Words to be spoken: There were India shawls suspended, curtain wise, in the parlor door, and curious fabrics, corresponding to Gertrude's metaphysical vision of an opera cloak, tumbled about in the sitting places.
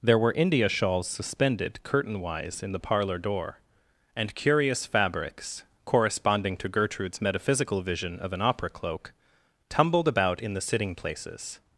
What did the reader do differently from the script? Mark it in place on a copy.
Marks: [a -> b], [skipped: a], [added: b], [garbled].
There were India shawls suspended, curtain wise, in the parlor door, and curious fabrics, corresponding to Gertrude's metaphysical vision of an opera cloak, tumbled about in the sitting places.